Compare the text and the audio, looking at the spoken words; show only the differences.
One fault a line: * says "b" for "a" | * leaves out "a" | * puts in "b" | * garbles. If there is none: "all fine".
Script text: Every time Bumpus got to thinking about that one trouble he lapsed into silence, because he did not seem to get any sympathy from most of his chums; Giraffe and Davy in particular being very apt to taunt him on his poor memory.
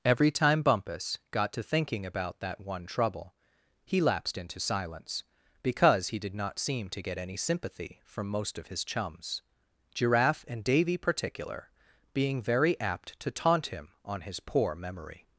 * leaves out "in"